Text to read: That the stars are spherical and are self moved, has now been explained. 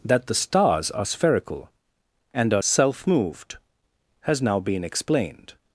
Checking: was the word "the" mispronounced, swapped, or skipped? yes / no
no